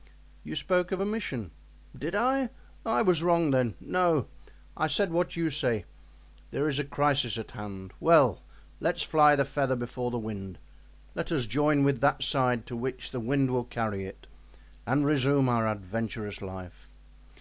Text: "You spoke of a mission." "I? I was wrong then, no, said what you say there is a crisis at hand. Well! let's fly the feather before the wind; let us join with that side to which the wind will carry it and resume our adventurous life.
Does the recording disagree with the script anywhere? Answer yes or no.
yes